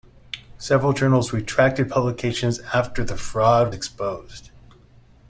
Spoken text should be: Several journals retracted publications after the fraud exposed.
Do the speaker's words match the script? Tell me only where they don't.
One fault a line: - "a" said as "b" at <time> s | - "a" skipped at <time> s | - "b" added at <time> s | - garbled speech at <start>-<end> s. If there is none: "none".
none